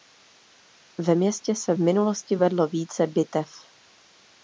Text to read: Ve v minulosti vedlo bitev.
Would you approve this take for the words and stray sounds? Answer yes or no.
no